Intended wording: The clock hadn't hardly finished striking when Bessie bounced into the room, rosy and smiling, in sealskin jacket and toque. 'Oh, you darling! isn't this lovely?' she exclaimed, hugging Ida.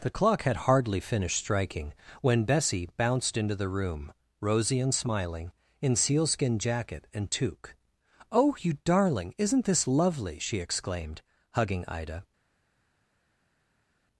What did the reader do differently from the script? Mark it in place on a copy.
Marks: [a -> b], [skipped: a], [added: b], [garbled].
The clock [hadn't -> had] hardly finished striking when Bessie bounced into the room, rosy and smiling, in sealskin jacket and toque. 'Oh, you darling! isn't this lovely?' she exclaimed, hugging Ida.